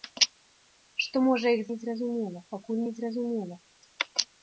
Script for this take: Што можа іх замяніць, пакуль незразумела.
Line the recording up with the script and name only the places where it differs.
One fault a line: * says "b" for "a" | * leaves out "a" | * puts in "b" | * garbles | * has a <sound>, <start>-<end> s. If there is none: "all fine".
* says "незразумела" for "замяніць"